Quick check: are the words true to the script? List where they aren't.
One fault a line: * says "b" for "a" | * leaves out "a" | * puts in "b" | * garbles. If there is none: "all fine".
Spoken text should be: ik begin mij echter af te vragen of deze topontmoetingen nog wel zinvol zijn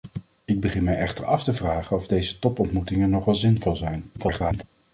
* garbles